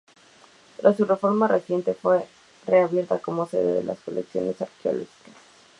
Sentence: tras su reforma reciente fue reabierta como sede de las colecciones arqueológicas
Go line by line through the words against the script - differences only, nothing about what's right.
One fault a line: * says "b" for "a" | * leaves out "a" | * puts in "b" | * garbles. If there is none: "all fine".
all fine